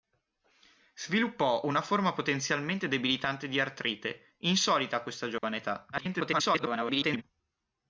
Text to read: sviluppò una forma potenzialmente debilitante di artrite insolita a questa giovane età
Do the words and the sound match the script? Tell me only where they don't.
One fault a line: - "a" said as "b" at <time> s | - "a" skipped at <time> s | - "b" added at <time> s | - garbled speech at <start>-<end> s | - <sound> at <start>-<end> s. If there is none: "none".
- dropout at 5.4-5.4 s
- garbled speech at 5.9-7.2 s